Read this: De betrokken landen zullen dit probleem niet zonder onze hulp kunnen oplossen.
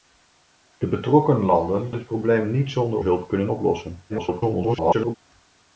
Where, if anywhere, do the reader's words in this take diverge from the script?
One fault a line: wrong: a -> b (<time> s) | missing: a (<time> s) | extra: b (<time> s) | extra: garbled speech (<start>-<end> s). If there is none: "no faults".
missing: zullen (1.9 s)
missing: onze (3.0 s)
extra: garbled speech (4.1-5.2 s)